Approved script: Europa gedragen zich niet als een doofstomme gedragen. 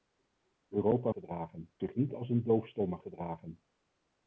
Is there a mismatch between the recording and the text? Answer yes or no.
no